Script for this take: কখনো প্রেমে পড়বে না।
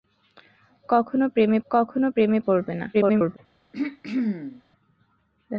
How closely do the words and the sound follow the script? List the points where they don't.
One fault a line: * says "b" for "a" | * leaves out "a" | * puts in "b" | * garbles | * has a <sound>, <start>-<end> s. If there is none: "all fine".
* puts in "কখনো প্রেমে"
* garbles
* has a throat clearing, 3.7-4.6 s